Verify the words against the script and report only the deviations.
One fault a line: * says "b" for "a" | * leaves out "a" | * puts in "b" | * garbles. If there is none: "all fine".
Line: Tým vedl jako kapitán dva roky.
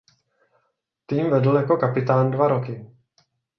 all fine